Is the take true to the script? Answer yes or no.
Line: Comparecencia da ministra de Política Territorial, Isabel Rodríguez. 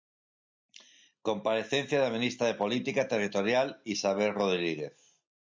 yes